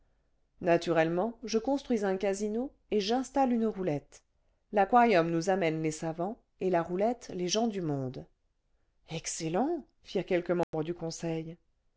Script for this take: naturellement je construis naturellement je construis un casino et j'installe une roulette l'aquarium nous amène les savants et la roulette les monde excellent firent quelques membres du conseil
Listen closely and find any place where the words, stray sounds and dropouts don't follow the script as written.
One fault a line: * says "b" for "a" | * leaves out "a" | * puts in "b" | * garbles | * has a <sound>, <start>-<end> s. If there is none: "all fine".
* leaves out "naturellement je construis"
* puts in "gens du"
* has a dropout, 10.6-10.7 s